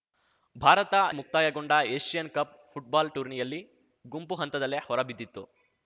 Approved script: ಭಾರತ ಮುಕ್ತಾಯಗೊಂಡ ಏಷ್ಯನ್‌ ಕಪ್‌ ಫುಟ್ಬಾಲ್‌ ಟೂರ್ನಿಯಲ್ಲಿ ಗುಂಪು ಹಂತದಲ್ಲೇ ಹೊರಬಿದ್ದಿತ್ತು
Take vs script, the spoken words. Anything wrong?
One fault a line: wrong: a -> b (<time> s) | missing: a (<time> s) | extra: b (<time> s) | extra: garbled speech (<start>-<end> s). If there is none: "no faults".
no faults